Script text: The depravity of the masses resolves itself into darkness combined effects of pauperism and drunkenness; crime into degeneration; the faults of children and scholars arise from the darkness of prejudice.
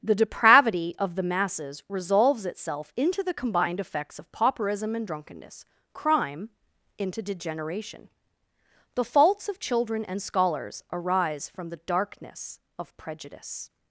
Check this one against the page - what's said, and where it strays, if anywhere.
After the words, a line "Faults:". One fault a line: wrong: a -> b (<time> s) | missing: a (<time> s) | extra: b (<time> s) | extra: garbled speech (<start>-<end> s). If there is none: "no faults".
The depravity of the masses resolves itself into the combined effects of pauperism and drunkenness; crime into degeneration; the faults of children and scholars arise from the darkness of prejudice.
Faults:
wrong: darkness -> the (3.2 s)